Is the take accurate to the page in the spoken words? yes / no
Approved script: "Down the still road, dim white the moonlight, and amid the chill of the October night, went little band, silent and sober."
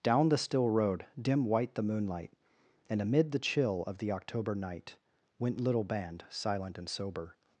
yes